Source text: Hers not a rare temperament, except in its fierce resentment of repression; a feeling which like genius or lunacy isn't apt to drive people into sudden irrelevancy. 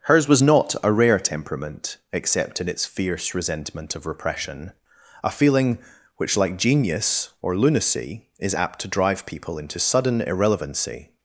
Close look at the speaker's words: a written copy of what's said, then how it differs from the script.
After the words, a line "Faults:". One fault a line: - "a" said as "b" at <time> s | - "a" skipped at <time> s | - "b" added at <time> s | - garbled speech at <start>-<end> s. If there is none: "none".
Hers was not a rare temperament, except in its fierce resentment of repression; a feeling which like genius or lunacy is apt to drive people into sudden irrelevancy.
Faults:
- "was" added at 0.3 s
- "isn't" said as "is" at 8.4 s